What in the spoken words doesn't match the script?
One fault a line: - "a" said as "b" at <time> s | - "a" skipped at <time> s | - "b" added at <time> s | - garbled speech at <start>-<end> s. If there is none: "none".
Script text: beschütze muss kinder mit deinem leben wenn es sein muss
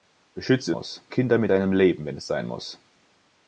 none